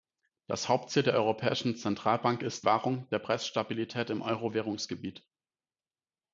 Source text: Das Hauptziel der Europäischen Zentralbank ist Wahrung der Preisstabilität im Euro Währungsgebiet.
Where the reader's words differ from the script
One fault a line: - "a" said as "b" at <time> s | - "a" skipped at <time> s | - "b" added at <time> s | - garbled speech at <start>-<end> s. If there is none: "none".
none